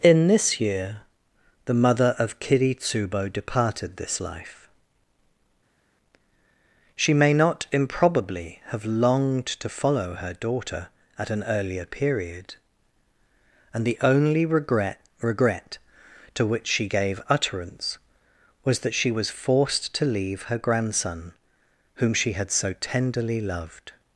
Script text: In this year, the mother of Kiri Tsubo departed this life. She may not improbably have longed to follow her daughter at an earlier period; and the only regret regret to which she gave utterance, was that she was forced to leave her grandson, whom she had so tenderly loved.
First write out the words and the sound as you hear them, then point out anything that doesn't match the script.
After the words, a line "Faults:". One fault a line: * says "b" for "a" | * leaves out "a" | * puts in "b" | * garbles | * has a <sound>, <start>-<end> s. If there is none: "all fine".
In this year, the mother of Kiri Tsubo departed this life. She may not improbably have longed to follow her daughter at an earlier period; and the only regret regret to which she gave utterance, was that she was forced to leave her grandson, whom she had so tenderly loved.
Faults:
all fine